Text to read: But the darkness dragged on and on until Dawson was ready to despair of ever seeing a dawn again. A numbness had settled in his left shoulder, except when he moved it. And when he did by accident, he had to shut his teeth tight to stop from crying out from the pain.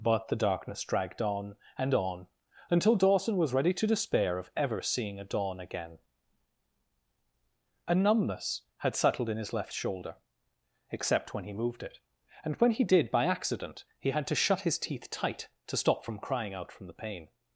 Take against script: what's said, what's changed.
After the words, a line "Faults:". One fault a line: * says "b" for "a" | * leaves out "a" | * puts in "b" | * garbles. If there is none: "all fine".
But the darkness dragged on and on until Dawson was ready to despair of ever seeing a dawn again. A numbness had settled in his left shoulder, except when he moved it. And when he did by accident, he had to shut his teeth tight to stop from crying out from the pain.
Faults:
all fine